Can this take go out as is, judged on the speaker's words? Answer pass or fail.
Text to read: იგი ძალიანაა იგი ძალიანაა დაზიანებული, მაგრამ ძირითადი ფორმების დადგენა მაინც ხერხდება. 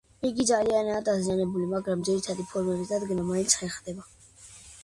fail